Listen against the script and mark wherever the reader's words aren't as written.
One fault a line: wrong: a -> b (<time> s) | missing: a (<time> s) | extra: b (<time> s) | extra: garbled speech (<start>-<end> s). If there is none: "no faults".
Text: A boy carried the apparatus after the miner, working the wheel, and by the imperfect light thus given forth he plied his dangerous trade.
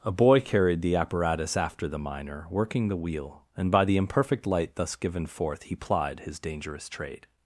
no faults